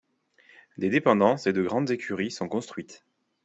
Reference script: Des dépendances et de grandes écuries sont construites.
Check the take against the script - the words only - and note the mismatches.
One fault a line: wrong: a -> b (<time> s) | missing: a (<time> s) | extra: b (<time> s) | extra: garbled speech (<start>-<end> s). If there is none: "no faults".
no faults